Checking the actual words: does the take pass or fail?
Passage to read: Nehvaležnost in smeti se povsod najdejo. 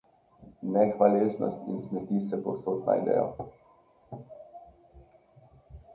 pass